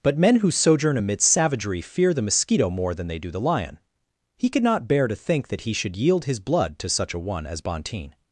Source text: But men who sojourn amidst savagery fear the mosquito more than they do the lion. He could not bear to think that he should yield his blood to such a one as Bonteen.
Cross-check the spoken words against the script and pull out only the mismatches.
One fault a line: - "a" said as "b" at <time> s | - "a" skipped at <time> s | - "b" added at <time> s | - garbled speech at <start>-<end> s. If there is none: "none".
none